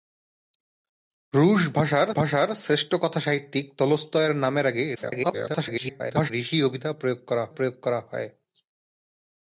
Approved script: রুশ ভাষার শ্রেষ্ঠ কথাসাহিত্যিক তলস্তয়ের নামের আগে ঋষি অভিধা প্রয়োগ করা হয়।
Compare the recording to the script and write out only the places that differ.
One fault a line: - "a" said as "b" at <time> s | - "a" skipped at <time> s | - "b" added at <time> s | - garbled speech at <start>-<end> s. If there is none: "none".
- "ভাষার" added at 2.2 s
- garbled speech at 5.0-6.3 s
- "প্রয়োগ করা" added at 7.5 s